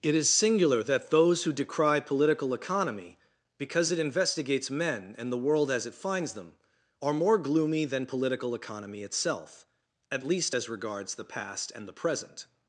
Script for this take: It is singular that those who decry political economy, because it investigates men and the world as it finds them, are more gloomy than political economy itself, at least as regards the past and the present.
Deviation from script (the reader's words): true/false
false